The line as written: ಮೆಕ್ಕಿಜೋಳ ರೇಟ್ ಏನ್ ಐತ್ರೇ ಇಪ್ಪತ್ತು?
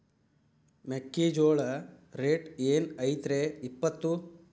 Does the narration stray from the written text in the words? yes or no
no